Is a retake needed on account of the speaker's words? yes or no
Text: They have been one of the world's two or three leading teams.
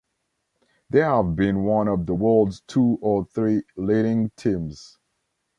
no